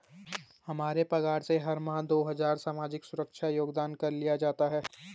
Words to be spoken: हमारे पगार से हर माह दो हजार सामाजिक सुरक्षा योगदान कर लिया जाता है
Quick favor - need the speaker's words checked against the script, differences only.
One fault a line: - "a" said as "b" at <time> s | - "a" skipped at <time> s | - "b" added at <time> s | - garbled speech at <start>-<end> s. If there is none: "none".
none